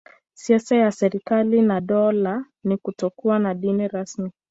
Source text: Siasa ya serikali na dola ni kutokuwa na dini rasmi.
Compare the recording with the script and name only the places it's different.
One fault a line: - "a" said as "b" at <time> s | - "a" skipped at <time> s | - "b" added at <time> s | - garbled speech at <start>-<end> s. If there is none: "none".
none